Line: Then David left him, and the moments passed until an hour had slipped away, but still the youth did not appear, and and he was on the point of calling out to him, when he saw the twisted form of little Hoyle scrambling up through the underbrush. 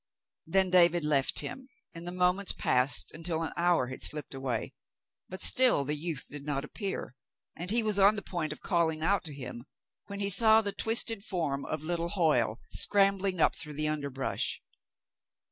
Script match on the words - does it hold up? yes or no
no